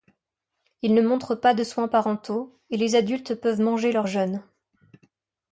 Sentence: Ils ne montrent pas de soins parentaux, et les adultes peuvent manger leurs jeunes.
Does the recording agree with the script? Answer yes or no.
yes